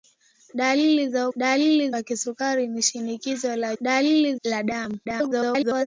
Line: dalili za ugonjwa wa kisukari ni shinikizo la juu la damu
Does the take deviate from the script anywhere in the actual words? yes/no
yes